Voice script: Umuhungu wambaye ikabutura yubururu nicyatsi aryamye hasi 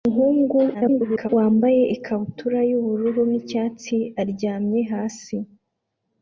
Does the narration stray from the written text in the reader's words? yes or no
yes